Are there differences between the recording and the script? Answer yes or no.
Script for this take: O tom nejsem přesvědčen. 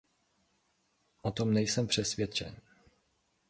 no